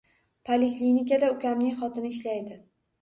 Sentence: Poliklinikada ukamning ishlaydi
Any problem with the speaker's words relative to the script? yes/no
yes